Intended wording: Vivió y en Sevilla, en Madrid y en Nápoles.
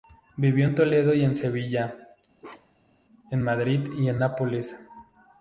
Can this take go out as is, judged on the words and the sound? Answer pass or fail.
fail